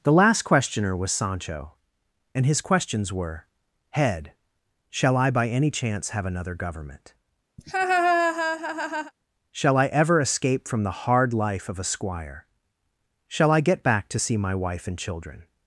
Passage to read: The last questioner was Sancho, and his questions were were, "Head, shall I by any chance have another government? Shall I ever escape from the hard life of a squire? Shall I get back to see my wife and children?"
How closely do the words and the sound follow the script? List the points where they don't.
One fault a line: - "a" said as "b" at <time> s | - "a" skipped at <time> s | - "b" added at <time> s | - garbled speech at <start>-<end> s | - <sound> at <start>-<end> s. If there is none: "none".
- "were" skipped at 3.5 s
- laugh at 7.6-9.1 s